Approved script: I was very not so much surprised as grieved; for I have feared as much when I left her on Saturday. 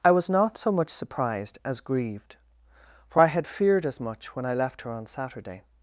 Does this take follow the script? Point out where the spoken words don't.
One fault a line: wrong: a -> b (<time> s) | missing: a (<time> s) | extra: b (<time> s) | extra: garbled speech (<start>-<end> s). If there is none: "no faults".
missing: very (0.3 s)
wrong: have -> had (3.2 s)